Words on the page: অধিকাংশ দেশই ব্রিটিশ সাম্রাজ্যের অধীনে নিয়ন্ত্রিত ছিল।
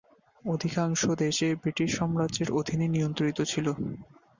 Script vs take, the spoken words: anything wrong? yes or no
no